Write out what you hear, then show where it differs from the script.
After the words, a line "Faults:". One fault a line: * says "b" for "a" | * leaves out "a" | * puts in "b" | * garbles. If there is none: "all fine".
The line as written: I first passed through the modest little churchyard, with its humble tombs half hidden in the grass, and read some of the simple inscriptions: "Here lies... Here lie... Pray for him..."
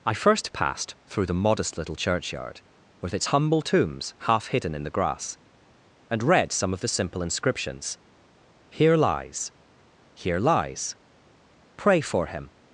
I first passed through the modest little churchyard, with its humble tombs half hidden in the grass, and read some of the simple inscriptions: "Here lies... Here lies... Pray for him..."
Faults:
* says "lies" for "lie"